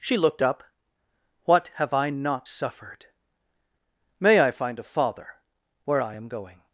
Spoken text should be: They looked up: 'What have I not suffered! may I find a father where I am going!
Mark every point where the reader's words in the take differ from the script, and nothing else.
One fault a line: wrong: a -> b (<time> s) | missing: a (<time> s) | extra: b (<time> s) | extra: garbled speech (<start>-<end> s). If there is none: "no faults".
wrong: They -> She (0.0 s)